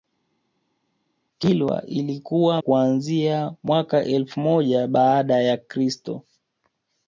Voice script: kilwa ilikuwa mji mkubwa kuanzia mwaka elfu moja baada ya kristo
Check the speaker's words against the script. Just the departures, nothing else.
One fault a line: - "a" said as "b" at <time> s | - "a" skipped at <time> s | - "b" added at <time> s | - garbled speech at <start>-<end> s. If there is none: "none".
- "mji mkubwa" skipped at 2.6 s